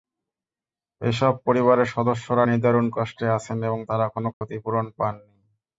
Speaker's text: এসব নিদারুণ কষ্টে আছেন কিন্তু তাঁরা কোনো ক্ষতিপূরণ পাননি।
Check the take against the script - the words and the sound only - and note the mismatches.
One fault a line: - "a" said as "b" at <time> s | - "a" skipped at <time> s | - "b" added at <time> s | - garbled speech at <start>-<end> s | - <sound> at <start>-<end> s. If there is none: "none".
- "পরিবারের সদস্যরা" added at 1.4 s
- "কিন্তু" said as "এবং" at 3.6 s
- dropout at 4.3-4.4 s